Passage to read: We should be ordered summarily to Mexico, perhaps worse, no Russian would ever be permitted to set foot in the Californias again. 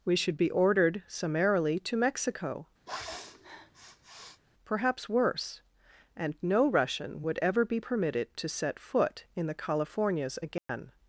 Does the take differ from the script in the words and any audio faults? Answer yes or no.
yes